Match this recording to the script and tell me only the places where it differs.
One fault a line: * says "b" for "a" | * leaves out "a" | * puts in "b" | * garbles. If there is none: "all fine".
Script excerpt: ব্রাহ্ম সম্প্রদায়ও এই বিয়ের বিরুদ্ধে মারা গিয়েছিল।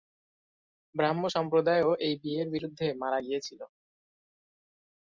all fine